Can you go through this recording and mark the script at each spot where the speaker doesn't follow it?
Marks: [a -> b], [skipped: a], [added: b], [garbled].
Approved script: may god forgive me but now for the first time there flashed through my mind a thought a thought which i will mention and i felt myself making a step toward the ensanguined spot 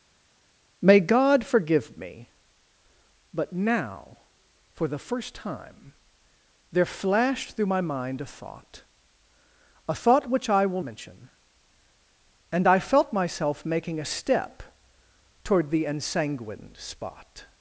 may god forgive me but now for the first time there flashed through my mind a thought a thought which i will mention and i felt myself making a step toward the ensanguined spot